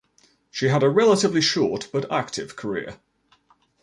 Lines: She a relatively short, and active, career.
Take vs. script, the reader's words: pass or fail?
fail